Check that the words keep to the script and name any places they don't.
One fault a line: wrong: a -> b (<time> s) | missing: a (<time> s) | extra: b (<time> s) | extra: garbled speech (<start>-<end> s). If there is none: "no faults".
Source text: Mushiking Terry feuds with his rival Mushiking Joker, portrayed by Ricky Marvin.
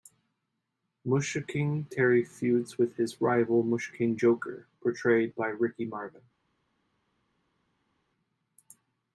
no faults